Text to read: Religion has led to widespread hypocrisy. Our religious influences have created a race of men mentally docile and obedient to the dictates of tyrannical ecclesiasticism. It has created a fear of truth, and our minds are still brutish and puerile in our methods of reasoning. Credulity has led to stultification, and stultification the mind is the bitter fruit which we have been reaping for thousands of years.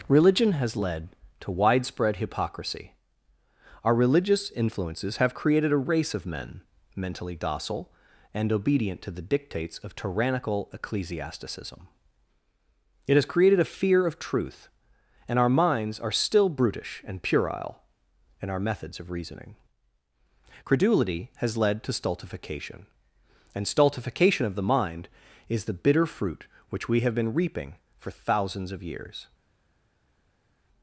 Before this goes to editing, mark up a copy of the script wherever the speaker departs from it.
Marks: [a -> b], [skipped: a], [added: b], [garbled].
Religion has led to widespread hypocrisy. Our religious influences have created a race of men mentally docile and obedient to the dictates of tyrannical ecclesiasticism. It has created a fear of truth, and our minds are still brutish and puerile in our methods of reasoning. Credulity has led to stultification, and stultification [added: of] the mind is the bitter fruit which we have been reaping for thousands of years.